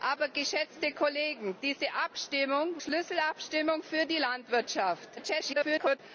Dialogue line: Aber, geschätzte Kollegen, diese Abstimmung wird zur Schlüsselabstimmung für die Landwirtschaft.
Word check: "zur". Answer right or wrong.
wrong